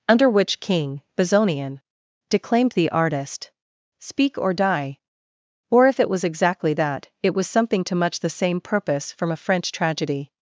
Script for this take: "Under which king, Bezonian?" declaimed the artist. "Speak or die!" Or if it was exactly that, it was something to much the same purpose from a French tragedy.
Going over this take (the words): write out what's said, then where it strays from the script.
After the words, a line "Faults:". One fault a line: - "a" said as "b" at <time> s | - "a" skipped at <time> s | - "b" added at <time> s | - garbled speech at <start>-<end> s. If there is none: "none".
"Under which king, Bezonian?" declaimed the artist. "Speak or die!" Or if it was exactly that, it was something to much the same purpose from a French tragedy.
Faults:
none